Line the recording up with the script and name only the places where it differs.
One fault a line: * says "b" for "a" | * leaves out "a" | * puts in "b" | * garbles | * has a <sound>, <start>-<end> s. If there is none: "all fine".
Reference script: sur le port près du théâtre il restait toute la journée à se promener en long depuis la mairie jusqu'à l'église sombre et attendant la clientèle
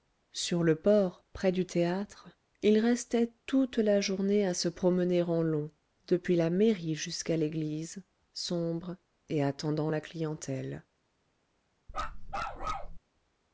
* has a bark, 11.9-13.0 s